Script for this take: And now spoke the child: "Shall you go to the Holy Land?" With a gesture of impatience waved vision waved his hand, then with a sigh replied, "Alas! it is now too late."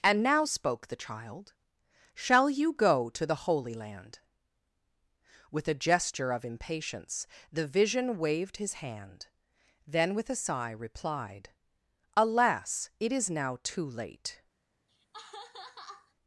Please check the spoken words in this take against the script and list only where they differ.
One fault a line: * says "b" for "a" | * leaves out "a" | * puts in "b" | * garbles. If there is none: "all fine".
* says "the" for "waved"